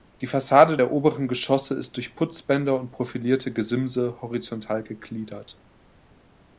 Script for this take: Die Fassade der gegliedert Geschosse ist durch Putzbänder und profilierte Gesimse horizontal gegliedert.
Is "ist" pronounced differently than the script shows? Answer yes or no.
no